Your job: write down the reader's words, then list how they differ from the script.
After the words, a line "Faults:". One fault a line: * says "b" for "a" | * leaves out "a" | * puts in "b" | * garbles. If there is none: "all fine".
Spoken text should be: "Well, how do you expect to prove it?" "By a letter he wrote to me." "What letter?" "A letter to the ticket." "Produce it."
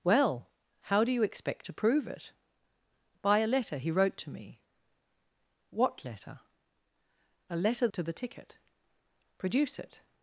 "Well, how do you expect to prove it?" "By a letter he wrote to me." "What letter?" "A letter to the ticket." "Produce it."
Faults:
all fine